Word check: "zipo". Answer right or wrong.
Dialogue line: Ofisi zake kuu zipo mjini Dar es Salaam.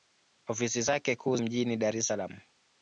wrong